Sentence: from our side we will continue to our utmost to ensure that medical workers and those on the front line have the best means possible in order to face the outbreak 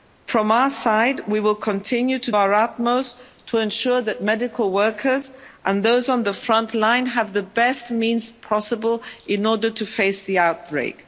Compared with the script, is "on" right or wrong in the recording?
right